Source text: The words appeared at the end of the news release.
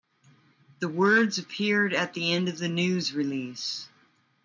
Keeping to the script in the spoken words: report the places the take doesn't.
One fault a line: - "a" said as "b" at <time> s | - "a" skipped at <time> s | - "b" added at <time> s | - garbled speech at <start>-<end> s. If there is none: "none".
none